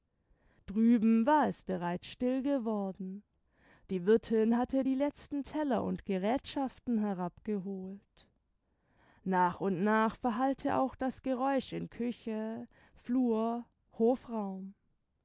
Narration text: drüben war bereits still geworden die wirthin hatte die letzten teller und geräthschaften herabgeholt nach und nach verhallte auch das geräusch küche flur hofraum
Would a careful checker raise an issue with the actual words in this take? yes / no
yes